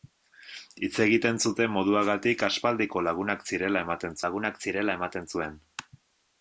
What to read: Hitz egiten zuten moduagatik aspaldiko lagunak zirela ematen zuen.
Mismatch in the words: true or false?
true